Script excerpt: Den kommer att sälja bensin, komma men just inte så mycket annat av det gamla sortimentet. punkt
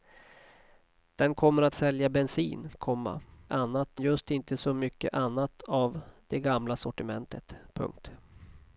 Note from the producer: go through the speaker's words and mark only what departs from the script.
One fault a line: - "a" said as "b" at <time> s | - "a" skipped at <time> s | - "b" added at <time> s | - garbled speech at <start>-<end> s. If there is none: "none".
- "men" said as "annat" at 3.5 s